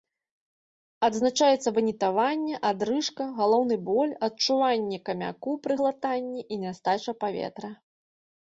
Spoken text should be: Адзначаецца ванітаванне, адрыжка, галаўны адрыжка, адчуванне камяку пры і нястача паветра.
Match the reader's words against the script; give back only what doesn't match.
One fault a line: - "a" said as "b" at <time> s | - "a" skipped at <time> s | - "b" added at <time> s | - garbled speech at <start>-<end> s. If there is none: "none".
- "адрыжка" said as "боль" at 3.9 s
- "глытанні" added at 5.8 s